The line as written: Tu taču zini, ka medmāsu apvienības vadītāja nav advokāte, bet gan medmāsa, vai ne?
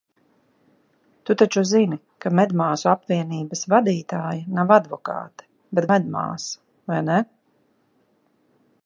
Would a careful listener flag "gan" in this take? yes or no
yes